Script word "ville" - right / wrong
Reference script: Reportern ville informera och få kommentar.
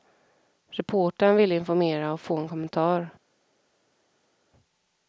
right